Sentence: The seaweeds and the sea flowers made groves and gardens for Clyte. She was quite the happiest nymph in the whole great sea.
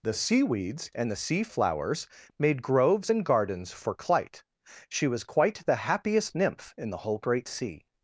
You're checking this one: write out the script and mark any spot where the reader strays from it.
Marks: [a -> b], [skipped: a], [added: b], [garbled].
The seaweeds and the sea flowers made groves and gardens for Clyte. She was quite the happiest nymph in the whole great sea.